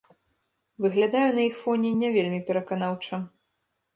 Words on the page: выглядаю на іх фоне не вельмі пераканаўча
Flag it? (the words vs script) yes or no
no